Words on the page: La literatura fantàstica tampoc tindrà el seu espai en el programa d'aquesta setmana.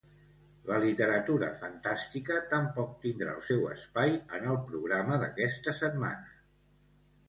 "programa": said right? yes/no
yes